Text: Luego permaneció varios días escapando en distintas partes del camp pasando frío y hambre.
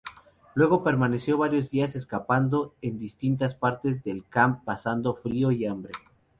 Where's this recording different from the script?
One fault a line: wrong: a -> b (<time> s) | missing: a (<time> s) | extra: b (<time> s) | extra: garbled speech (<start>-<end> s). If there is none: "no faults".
no faults